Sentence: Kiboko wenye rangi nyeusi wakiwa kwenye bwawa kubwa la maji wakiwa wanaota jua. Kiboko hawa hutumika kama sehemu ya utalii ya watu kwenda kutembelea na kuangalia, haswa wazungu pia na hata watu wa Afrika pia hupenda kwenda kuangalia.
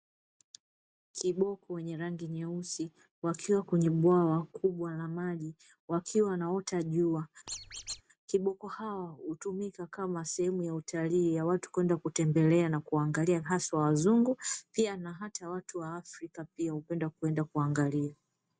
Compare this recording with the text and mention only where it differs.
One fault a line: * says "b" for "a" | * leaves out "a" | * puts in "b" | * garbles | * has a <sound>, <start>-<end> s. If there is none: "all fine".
* has a squeak, 7.5-8.0 s